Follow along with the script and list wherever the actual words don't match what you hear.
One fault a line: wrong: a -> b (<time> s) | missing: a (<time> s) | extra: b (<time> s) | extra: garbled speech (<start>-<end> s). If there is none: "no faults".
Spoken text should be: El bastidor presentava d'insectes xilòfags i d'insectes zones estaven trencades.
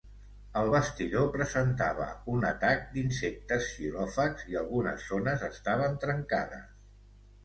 extra: un atac (2.3 s)
wrong: d'insectes -> algunes (4.6 s)